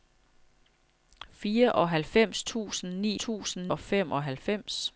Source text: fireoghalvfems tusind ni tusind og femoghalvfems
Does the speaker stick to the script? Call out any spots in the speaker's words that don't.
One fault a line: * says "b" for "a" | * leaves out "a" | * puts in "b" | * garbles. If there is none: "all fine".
all fine